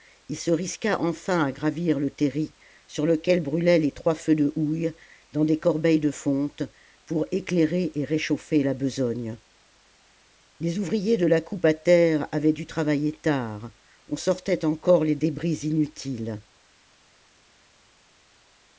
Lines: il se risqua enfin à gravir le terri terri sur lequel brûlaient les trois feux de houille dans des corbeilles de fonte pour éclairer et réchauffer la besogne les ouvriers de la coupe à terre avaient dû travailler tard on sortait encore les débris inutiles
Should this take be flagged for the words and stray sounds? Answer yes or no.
yes